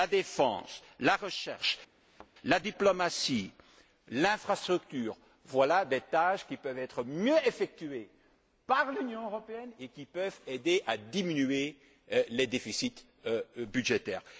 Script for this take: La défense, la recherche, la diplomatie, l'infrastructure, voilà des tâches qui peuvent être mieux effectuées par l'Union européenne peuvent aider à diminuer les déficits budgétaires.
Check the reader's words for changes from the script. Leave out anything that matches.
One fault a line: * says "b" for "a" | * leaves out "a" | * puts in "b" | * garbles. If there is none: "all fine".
* puts in "et qui"